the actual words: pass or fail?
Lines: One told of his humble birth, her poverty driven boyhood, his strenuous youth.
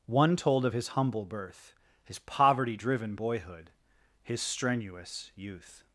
fail